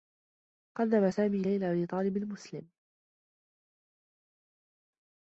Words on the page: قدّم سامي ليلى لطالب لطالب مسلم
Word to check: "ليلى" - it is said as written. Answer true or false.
true